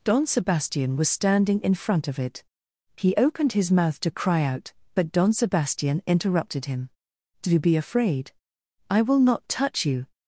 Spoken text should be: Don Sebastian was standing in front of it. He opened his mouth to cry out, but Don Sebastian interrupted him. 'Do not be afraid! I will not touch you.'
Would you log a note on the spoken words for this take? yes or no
yes